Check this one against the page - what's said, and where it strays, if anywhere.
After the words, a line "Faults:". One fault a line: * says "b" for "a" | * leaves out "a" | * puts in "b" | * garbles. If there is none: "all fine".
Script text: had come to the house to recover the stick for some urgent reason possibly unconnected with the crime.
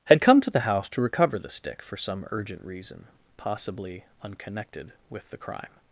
had come to the house to recover the stick for some urgent reason possibly unconnected with the crime.
Faults:
all fine